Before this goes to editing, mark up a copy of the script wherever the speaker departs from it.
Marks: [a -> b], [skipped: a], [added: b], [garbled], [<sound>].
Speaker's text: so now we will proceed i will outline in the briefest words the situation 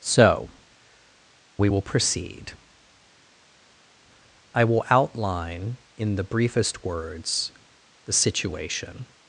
so [skipped: now] we will proceed i will outline in the briefest words the situation